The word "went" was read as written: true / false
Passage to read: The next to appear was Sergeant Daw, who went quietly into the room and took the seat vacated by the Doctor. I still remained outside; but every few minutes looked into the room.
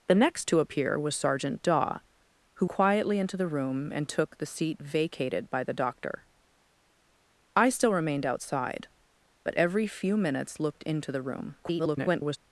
false